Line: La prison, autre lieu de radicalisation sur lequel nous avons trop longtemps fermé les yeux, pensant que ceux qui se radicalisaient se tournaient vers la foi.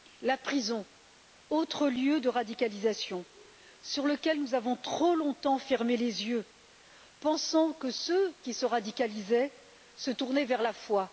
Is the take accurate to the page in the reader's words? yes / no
yes